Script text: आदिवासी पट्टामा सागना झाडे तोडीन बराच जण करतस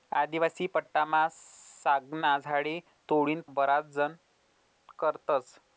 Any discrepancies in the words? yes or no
no